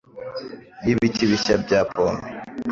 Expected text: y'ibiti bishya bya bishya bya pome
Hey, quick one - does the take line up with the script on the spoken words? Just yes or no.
no